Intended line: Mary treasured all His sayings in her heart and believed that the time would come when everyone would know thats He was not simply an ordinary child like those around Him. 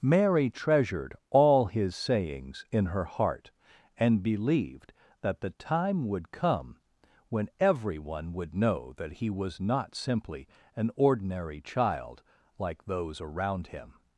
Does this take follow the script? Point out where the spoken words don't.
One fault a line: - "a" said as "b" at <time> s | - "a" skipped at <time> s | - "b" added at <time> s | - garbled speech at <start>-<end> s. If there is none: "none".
- "thats" said as "that" at 9.0 s